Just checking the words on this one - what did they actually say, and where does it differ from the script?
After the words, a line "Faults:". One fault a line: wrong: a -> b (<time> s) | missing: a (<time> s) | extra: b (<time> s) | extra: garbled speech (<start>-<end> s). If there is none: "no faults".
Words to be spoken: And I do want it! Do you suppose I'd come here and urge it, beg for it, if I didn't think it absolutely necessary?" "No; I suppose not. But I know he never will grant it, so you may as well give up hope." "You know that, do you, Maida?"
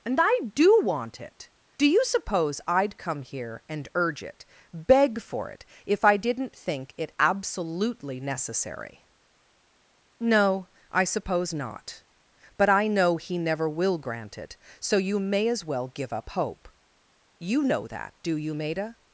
And I do want it! Do you suppose I'd come here and urge it, beg for it, if I didn't think it absolutely necessary?" "No; I suppose not. But I know he never will grant it, so you may as well give up hope." "You know that, do you, Maida?"
Faults:
no faults